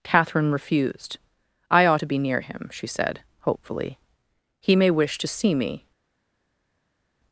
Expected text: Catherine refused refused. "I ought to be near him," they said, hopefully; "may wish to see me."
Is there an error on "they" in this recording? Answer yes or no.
yes